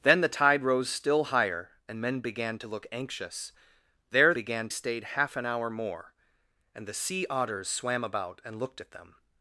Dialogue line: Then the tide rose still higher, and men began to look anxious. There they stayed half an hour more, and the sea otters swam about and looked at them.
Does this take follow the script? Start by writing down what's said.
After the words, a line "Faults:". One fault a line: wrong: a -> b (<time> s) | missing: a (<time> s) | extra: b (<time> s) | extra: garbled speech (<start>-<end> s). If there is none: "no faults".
Then the tide rose still higher, and men began to look anxious. There began stayed half an hour more, and the sea otters swam about and looked at them.
Faults:
wrong: they -> began (4.3 s)